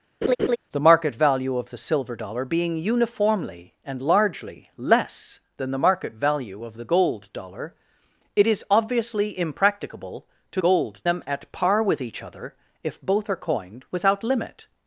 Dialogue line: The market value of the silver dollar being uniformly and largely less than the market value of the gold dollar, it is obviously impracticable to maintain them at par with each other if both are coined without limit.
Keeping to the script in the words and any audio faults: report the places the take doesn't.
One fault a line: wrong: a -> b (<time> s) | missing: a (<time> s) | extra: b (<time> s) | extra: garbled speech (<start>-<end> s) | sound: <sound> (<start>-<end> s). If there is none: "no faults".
sound: laugh (0.2-0.6 s)
wrong: maintain -> gold (10.6 s)